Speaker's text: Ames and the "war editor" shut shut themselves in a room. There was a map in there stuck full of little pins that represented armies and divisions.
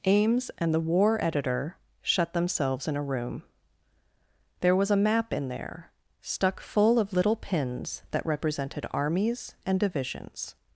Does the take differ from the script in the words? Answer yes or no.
yes